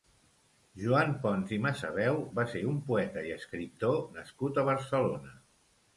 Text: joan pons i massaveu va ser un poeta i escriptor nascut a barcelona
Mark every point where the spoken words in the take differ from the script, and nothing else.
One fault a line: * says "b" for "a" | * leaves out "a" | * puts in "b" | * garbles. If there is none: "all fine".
all fine